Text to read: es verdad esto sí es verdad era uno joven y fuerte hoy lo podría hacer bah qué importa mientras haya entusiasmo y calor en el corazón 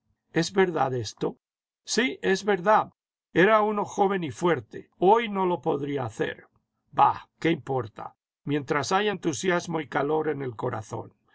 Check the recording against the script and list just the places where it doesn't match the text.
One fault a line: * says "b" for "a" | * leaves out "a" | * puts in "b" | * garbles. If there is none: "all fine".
* puts in "no"